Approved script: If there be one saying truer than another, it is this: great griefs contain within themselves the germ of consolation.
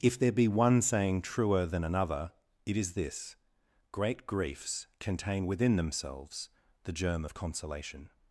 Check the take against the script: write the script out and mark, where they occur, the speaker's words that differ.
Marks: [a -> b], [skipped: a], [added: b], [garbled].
If there be one saying truer than another, it is this: great griefs contain within themselves the germ of consolation.